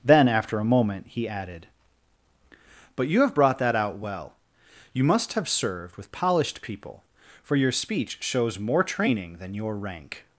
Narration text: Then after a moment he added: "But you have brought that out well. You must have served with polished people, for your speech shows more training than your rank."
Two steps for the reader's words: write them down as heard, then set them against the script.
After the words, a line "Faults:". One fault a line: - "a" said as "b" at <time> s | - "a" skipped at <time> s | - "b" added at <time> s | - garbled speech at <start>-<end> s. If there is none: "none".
Then after a moment he added: "But you have brought that out well. You must have served with polished people, for your speech shows more training than your rank."
Faults:
none